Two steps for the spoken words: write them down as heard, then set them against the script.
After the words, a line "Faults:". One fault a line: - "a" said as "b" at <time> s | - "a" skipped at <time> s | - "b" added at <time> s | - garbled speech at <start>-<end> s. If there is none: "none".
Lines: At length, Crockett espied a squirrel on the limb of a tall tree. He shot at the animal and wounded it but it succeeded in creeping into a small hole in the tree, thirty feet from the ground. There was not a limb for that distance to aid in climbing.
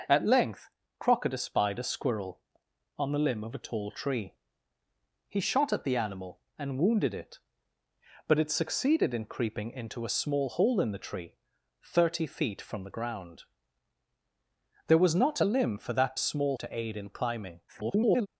At length, Crockett espied a squirrel on the limb of a tall tree. He shot at the animal and wounded it but it succeeded in creeping into a small hole in the tree, thirty feet from the ground. There was not a limb for that small to aid in climbing. [garbled]
Faults:
- "distance" said as "small" at 16.2 s
- garbled speech at 17.7-18.3 s